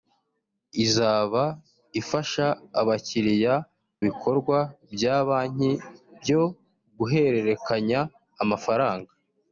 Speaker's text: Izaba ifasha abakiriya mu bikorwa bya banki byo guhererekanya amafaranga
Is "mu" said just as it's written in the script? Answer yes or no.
no